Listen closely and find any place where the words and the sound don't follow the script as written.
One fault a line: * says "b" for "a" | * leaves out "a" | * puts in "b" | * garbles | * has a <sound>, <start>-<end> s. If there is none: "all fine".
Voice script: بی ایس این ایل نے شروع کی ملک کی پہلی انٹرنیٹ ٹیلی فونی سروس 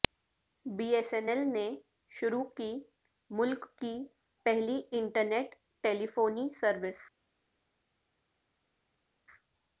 all fine